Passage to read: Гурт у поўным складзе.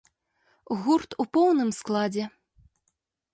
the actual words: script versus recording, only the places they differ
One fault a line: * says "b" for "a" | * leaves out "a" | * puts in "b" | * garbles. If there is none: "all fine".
all fine